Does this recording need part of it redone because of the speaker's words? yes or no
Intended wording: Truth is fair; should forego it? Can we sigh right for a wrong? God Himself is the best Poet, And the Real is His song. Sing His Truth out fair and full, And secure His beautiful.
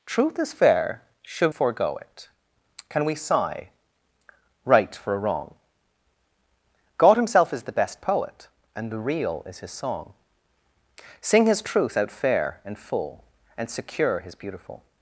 no